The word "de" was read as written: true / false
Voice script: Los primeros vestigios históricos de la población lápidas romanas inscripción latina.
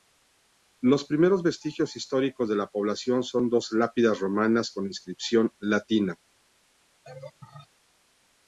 true